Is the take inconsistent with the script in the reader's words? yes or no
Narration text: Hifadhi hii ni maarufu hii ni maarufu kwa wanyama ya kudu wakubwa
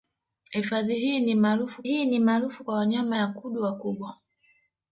no